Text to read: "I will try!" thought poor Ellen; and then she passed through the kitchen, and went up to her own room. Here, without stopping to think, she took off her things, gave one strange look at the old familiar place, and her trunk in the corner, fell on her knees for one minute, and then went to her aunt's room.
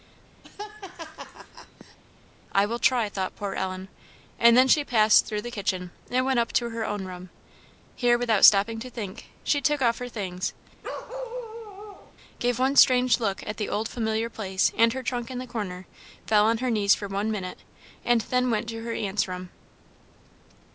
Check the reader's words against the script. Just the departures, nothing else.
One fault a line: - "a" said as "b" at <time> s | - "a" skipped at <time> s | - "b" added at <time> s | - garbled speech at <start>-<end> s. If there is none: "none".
none